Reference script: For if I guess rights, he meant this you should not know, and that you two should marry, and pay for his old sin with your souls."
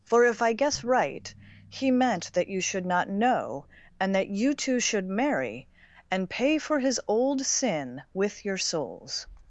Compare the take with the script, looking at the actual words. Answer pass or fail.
fail